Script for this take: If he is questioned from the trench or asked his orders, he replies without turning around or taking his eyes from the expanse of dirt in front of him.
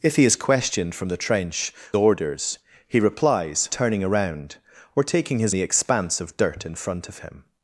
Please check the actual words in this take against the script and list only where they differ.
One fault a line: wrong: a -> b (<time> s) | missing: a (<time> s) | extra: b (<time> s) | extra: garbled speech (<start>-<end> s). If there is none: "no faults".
missing: or asked his (1.7 s)
missing: without (3.7 s)
missing: eyes from (5.5 s)